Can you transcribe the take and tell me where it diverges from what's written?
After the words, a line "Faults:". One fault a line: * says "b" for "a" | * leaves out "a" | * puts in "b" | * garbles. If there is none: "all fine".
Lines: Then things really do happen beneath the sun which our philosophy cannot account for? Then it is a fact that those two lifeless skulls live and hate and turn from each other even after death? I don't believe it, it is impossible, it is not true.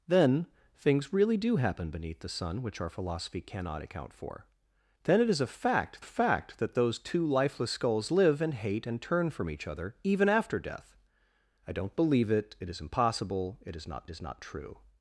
Then things really do happen beneath the sun which our philosophy cannot account for? Then it is a fact fact that those two lifeless skulls live and hate and turn from each other even after death? I don't believe it, it is impossible, it is not is not true.
Faults:
* puts in "fact"
* puts in "is not"